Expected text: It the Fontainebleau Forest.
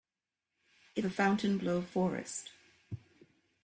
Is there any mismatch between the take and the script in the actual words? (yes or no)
no